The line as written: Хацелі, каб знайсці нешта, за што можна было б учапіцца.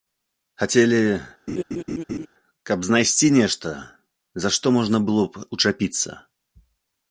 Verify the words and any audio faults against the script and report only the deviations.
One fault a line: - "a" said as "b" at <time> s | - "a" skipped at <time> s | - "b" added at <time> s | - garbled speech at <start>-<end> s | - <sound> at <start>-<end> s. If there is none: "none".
- laugh at 1.5-2.3 s